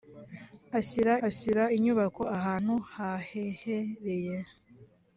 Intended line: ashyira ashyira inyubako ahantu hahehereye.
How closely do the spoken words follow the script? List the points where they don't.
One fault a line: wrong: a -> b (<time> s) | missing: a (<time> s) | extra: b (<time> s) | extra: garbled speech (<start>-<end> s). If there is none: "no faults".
no faults